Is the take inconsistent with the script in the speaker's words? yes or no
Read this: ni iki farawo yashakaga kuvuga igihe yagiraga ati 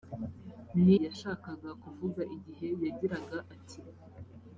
yes